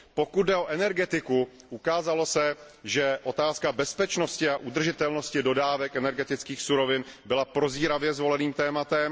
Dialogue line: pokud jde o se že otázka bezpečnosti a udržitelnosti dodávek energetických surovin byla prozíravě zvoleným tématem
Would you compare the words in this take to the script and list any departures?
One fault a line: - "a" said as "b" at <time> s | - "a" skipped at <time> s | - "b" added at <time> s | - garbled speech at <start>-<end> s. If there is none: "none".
- "energetiku ukázalo" added at 0.7 s